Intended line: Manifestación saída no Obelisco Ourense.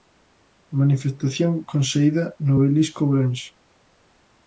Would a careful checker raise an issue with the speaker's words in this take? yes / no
yes